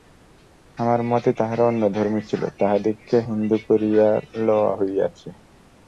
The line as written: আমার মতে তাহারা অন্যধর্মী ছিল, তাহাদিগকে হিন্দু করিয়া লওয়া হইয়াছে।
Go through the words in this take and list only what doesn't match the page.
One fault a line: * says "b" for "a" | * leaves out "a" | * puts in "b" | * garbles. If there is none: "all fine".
all fine